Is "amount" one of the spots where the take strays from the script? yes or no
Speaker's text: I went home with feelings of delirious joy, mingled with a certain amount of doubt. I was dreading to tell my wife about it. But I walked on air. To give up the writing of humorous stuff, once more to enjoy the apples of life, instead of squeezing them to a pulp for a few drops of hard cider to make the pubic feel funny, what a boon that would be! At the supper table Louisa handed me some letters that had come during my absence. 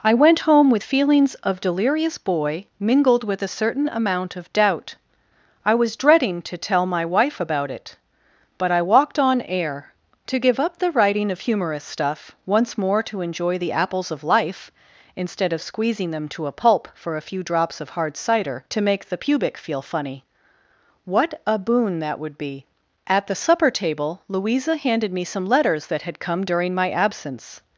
no